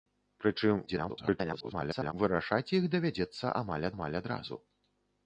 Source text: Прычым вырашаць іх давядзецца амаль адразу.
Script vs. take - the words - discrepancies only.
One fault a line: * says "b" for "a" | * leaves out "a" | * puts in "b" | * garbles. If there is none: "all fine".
* garbles
* puts in "амаль"